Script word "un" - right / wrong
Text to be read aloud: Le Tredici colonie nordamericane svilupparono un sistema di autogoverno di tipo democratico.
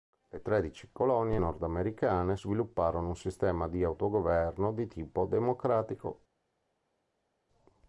right